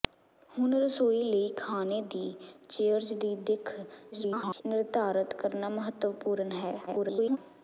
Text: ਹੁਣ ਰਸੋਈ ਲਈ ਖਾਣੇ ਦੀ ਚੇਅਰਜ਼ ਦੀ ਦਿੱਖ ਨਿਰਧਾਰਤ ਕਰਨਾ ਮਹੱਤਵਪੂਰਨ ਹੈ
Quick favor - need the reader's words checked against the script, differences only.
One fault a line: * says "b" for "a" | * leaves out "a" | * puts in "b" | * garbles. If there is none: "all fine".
* garbles
* garbles